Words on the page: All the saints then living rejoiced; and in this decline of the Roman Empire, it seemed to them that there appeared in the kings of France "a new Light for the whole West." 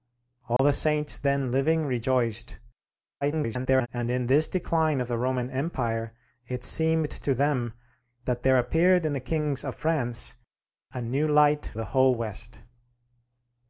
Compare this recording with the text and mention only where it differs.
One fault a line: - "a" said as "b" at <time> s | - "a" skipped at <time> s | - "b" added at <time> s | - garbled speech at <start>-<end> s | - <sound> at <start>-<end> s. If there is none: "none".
- dropout at 0.6-0.6 s
- garbled speech at 3.2-3.9 s
- "for" skipped at 11.7 s